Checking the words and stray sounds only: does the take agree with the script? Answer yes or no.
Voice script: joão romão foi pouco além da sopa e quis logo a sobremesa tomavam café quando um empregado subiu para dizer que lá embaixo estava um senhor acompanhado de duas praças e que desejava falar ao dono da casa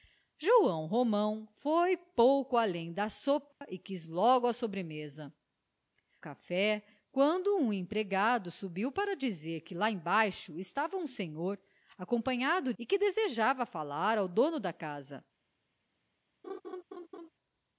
no